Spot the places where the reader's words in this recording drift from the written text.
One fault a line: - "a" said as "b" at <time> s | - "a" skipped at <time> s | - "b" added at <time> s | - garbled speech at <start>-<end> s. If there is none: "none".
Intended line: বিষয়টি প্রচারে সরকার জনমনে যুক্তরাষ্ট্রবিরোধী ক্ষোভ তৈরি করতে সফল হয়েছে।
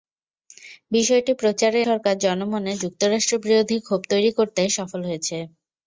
none